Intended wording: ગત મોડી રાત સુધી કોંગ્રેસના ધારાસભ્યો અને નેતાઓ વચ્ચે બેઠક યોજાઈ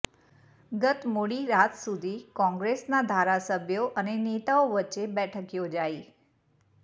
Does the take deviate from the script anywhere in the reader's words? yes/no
no